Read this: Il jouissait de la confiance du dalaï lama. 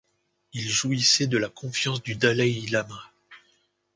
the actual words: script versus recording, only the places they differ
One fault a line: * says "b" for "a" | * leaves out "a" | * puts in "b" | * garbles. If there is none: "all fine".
all fine